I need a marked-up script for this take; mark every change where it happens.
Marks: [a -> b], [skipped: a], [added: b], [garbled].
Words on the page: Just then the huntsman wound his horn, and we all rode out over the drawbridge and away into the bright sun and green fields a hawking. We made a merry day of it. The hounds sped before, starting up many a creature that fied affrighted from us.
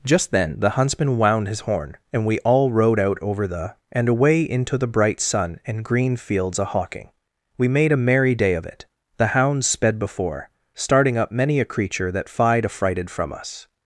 Just then the huntsman wound his horn, and we all rode out over the [skipped: drawbridge] and away into the bright sun and green fields a hawking. We made a merry day of it. The hounds sped before, starting up many a creature that fied affrighted from us.